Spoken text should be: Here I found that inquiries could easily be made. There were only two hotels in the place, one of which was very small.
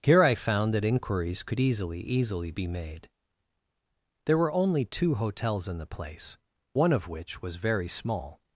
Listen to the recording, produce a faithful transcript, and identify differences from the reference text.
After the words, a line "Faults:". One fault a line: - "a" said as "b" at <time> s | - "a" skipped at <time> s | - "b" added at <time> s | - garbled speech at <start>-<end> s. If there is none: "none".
Here I found that inquiries could easily easily be made. There were only two hotels in the place, one of which was very small.
Faults:
- "easily" added at 2.0 s